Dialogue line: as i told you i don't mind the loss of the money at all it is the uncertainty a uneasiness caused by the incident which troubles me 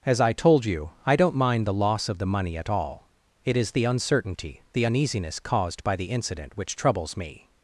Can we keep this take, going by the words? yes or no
no